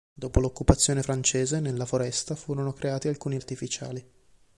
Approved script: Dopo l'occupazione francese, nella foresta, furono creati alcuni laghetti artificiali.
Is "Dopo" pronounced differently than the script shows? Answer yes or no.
no